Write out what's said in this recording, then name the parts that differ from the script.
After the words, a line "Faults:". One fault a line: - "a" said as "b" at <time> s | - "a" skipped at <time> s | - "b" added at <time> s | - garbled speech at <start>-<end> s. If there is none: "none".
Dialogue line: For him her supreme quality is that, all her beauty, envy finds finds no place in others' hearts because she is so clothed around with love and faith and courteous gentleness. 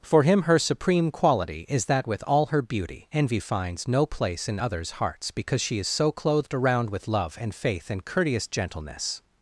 For him her supreme quality is that, with all her beauty, envy finds no place in others' hearts because she is so clothed around with love and faith and courteous gentleness.
Faults:
- "with" added at 2.1 s
- "finds" skipped at 3.9 s